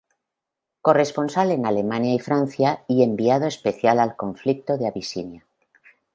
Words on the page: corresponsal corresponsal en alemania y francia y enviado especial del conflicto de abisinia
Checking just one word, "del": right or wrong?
wrong